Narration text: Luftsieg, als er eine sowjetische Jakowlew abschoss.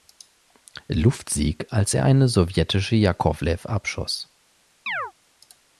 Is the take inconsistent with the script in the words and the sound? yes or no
yes